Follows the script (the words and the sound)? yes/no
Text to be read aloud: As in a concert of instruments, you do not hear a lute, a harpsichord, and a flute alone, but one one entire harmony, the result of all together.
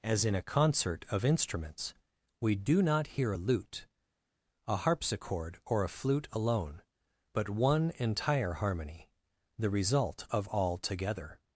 no